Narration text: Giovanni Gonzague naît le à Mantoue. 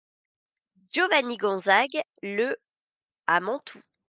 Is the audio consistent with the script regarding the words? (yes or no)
no